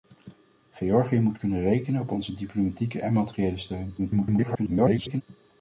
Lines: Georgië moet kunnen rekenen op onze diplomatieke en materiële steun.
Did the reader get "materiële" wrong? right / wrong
right